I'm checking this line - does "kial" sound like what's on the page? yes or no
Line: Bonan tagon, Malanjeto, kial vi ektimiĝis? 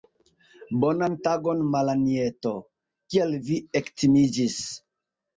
yes